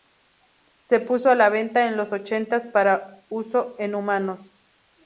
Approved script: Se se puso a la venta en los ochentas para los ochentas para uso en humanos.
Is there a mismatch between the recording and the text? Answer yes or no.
yes